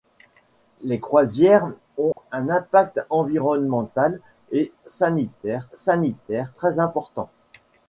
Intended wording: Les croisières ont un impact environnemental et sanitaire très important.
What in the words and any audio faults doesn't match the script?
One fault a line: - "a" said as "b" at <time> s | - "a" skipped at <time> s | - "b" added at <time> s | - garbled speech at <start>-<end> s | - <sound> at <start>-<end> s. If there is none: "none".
- dropout at 2.1-2.2 s
- "sanitaire" added at 5.7 s